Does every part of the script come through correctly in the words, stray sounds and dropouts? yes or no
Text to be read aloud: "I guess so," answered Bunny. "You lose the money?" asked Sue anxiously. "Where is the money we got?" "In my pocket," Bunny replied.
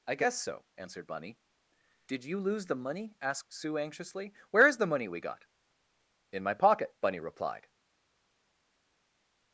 no